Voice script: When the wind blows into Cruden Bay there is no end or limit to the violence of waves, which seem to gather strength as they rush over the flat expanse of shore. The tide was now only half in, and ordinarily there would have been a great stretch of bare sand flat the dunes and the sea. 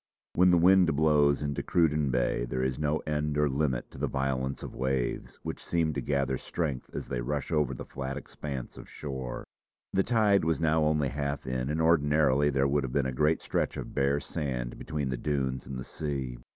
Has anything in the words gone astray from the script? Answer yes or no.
yes